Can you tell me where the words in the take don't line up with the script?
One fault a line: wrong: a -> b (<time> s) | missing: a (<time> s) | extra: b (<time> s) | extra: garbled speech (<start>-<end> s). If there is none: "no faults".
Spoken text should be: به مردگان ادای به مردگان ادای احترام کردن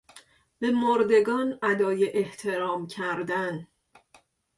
missing: به مردگان ادای (2.1 s)